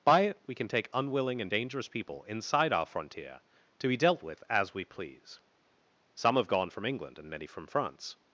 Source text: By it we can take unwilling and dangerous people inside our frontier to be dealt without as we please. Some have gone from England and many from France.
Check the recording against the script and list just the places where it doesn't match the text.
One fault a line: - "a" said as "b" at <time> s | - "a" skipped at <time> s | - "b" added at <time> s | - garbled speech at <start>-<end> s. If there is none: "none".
- "without" said as "with" at 4.2 s